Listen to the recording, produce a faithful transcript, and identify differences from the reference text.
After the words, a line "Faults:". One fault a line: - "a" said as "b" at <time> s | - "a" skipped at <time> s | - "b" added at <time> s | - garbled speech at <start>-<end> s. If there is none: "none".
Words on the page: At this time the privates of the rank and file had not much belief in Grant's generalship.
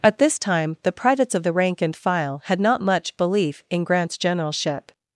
At this time the privates of the rank and file had not much belief in Grant's generalship.
Faults:
none